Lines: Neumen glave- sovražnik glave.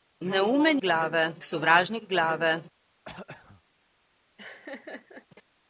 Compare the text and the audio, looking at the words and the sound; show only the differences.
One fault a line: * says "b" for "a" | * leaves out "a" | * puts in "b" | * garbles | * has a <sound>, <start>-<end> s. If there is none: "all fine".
* has a throat clearing, 3.0-3.6 s
* has a laugh, 4.4-5.3 s